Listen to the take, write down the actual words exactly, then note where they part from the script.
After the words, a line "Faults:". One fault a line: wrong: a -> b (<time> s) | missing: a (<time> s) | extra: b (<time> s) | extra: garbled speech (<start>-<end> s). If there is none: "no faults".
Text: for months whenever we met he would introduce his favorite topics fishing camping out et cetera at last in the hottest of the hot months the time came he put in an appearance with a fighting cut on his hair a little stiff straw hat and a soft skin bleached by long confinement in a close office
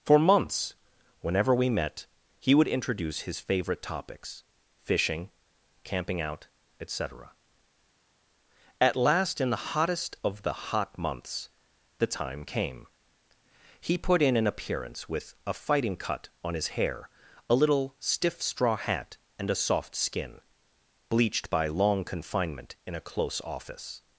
for months whenever we met he would introduce his favorite topics fishing camping out et cetera at last in the hottest of the hot months the time came he put in an appearance with a fighting cut on his hair a little stiff straw hat and a soft skin bleached by long confinement in a close office
Faults:
no faults